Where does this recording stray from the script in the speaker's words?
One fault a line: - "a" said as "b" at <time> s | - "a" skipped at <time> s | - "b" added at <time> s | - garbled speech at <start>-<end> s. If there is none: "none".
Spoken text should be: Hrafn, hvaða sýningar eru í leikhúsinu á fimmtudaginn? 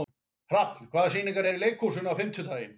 none